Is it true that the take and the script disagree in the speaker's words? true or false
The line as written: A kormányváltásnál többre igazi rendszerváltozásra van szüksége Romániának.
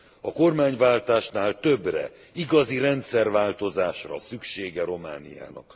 true